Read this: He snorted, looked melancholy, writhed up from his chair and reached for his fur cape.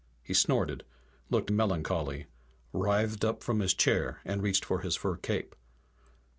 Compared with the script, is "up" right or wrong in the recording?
right